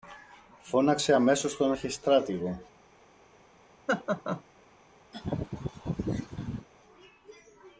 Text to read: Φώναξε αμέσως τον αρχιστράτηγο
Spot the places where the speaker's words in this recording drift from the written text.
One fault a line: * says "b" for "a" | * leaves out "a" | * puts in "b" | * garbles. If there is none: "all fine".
all fine